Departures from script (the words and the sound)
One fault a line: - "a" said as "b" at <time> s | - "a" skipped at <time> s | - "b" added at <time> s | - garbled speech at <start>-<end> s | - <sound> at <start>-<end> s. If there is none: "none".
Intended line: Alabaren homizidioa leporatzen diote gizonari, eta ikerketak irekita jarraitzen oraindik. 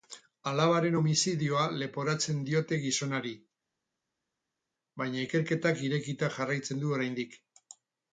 - "eta" said as "baina" at 5.0 s
- "du" added at 6.9 s